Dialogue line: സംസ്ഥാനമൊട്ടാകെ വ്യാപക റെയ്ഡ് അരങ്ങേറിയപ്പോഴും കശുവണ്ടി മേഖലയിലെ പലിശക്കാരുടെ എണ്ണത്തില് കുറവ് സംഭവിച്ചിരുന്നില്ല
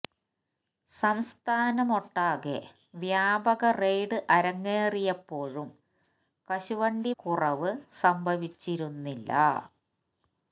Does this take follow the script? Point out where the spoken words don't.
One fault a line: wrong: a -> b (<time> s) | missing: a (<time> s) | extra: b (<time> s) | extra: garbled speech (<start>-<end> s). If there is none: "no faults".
missing: മേഖലയിലെ പലിശക്കാരുടെ എണ്ണത്തില് (7.1 s)